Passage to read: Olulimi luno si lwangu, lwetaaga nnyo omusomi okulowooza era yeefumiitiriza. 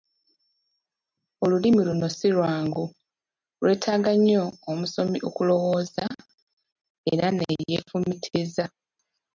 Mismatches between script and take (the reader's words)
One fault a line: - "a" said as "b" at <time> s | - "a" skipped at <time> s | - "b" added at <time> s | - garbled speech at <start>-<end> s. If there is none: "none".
- "ne" added at 7.3 s